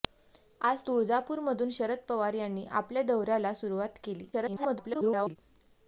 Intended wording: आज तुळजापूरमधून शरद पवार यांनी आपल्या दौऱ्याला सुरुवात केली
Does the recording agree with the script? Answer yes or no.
no